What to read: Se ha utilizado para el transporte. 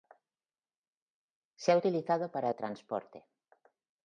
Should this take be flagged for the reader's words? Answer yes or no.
no